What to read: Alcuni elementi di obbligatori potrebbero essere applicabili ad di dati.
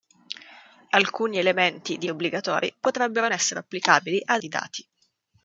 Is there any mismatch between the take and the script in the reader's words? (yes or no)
no